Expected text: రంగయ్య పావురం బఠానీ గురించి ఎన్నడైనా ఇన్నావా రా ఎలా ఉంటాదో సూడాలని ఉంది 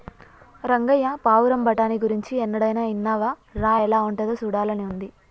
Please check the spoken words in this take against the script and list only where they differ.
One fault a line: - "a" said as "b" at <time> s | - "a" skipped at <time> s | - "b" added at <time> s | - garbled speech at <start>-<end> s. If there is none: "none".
none